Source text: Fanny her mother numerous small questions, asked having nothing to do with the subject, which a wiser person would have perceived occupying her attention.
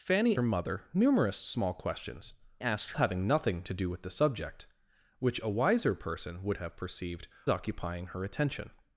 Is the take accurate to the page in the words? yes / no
yes